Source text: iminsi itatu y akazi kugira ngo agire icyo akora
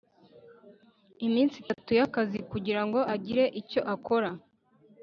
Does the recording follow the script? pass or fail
pass